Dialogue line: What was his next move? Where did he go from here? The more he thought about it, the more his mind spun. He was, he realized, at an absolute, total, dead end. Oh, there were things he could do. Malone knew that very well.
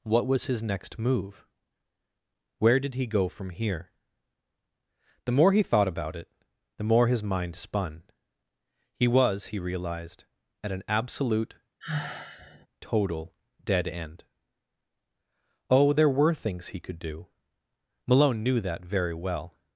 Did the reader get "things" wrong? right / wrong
right